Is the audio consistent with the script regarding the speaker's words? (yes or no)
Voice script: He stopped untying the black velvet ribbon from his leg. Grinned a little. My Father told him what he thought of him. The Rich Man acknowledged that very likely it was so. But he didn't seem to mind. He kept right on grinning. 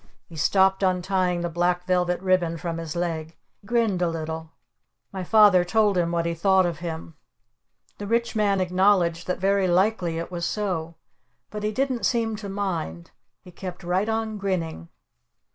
yes